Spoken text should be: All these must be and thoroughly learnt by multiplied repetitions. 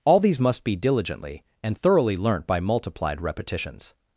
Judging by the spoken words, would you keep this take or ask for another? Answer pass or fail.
fail